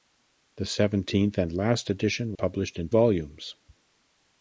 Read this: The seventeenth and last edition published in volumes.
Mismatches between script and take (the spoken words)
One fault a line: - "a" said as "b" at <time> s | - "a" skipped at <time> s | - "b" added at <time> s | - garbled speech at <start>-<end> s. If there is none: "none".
none